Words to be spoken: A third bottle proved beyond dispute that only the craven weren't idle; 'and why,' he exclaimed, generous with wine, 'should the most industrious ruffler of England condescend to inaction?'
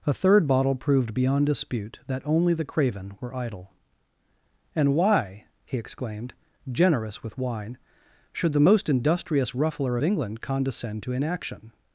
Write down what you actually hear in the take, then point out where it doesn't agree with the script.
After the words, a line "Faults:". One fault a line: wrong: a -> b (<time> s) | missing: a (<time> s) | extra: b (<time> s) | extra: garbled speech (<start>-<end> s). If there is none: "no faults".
A third bottle proved beyond dispute that only the craven were idle; 'and why,' he exclaimed, generous with wine, 'should the most industrious ruffler of England condescend to inaction?'
Faults:
wrong: weren't -> were (3.2 s)